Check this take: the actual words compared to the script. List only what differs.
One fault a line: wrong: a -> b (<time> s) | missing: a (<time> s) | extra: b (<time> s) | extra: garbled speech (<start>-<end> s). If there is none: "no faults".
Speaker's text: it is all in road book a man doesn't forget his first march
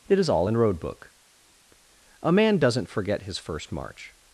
no faults